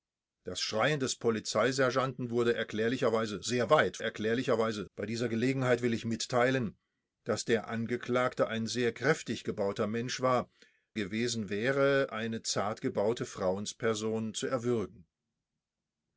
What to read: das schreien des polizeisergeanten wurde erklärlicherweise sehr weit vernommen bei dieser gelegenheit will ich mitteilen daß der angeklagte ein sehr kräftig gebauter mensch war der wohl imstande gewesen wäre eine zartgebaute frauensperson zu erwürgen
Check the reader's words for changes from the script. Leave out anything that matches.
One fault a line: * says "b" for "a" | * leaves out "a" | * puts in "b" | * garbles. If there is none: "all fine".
* says "erklärlicherweise" for "vernommen"
* leaves out "der wohl imstande"